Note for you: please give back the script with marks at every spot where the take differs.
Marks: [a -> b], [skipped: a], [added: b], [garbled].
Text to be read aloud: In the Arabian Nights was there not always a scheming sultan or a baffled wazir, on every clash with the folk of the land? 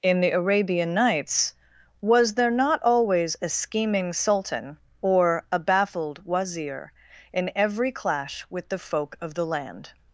In the Arabian Nights was there not always a scheming sultan or a baffled wazir, [on -> in] every clash with the folk of the land?